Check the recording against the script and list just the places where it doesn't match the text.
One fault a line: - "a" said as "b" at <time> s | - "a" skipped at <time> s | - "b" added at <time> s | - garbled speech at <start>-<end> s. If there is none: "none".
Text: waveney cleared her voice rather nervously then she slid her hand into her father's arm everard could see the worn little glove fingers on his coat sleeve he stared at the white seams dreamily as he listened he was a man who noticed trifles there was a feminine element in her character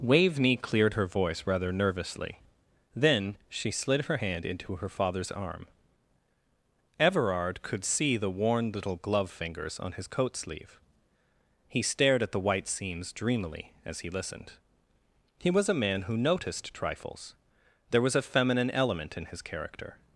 - "her" said as "his" at 19.2 s